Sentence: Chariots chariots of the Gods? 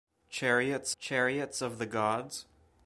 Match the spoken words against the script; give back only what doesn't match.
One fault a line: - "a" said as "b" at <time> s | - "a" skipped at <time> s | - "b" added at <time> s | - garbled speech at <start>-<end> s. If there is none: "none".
none